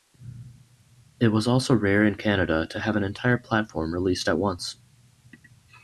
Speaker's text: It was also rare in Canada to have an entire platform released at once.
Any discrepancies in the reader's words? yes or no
no